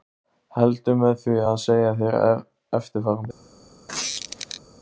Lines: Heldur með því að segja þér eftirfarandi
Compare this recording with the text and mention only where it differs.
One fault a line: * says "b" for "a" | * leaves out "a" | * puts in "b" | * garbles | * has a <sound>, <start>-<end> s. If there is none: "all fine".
* has a squeak, 3.9-4.6 s